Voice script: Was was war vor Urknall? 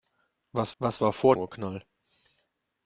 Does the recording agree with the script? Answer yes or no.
yes